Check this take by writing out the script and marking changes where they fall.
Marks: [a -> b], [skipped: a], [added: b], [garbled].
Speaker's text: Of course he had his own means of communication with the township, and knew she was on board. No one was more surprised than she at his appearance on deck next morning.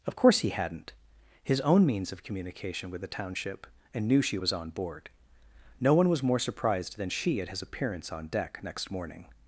Of course he [had -> hadn't] his own means of communication with the township, and knew she was on board. No one was more surprised than she at his appearance on deck next morning.